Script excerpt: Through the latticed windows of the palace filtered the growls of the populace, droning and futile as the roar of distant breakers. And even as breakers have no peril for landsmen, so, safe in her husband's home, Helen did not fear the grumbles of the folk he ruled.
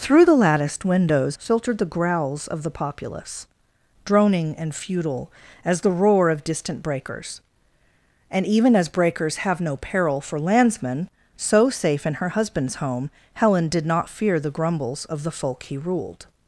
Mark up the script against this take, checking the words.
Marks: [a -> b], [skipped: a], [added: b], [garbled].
Through the latticed windows [skipped: of the palace] filtered the growls of the populace, droning and futile as the roar of distant breakers. And even as breakers have no peril for landsmen, so, safe in her husband's home, Helen did not fear the grumbles of the folk he ruled.